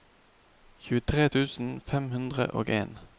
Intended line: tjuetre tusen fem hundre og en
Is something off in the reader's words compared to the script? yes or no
no